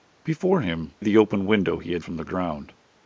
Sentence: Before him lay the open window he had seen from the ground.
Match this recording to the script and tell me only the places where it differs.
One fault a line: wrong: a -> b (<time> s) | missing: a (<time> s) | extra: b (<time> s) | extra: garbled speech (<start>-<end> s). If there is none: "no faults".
missing: lay (0.9 s)
missing: seen (2.0 s)